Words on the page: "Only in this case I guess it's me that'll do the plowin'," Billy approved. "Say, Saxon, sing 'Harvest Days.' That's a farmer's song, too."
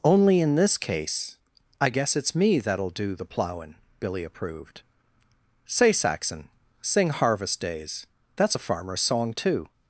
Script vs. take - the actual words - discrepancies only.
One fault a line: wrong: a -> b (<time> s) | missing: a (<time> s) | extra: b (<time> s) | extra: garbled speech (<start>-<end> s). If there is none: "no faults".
no faults